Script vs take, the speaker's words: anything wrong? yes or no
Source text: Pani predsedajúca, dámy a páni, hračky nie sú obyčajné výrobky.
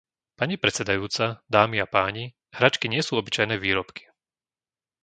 no